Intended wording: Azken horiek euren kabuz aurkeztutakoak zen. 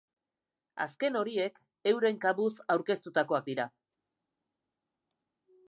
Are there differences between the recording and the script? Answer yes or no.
yes